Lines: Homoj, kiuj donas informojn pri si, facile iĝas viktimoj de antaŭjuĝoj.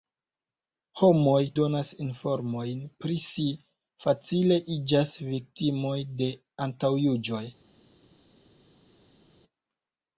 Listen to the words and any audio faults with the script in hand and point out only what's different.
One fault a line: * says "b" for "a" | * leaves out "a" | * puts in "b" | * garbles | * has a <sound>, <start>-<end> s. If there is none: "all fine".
* leaves out "kiuj"